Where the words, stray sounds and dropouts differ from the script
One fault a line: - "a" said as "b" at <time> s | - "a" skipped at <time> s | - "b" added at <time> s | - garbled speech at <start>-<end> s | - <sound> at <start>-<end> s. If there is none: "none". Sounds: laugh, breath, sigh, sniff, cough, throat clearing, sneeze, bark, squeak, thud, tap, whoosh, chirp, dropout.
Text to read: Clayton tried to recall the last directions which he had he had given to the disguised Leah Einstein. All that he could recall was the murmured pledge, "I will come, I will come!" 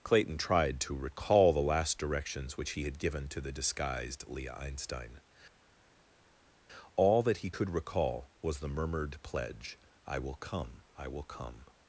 - "he had" skipped at 3.0 s